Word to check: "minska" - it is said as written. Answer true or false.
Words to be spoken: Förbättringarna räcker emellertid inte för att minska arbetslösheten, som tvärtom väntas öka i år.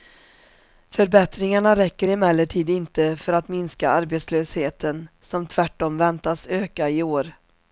true